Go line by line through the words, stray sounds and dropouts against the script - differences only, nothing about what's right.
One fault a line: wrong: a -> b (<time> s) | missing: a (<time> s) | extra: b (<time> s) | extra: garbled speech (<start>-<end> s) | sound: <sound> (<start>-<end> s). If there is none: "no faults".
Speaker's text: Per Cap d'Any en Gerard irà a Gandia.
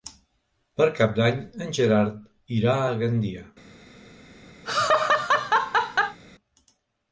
sound: laugh (4.6-6.2 s)